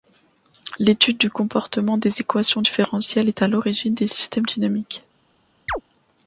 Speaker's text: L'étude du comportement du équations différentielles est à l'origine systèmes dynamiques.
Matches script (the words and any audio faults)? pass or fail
fail